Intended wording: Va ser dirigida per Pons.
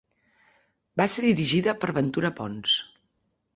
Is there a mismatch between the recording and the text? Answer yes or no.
yes